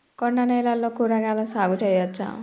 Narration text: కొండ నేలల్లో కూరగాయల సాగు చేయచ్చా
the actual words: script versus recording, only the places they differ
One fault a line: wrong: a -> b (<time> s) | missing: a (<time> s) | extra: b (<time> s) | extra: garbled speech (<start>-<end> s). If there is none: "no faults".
no faults